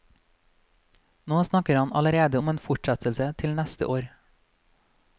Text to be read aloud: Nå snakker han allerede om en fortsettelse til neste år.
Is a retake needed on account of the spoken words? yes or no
no